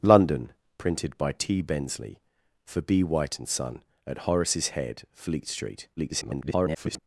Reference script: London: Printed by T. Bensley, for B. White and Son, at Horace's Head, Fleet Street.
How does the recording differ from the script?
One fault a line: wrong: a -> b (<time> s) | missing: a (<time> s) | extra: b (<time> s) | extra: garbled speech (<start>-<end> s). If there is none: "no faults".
extra: garbled speech (6.0-7.0 s)